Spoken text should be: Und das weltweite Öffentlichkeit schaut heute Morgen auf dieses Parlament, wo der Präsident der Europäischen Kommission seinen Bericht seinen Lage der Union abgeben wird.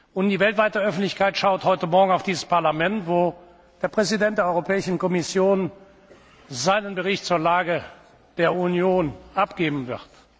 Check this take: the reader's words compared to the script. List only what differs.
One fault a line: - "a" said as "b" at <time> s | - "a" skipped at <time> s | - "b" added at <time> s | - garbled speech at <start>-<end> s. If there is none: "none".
- "das" said as "die" at 0.3 s
- "seinen" said as "zur" at 7.2 s